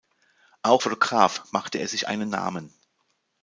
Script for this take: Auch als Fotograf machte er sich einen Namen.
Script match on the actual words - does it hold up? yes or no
no